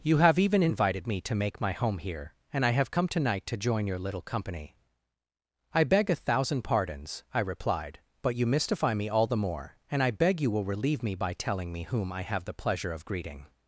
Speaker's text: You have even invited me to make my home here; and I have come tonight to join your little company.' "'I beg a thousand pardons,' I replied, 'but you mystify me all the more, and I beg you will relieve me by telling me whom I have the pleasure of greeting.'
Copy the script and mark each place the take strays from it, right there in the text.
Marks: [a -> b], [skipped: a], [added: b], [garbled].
You have even invited me to make my home here; and I have come tonight to join your little company.' "'I beg a thousand pardons,' I replied, 'but you mystify me all the more, and I beg you will relieve me by telling me whom I have the pleasure of greeting.'